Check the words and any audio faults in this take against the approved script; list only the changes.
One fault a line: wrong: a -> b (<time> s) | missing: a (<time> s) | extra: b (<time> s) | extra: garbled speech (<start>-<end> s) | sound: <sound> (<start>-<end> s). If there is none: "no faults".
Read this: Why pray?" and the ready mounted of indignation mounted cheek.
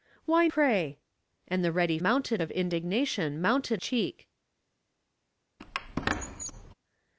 sound: squeak (5.6-6.7 s)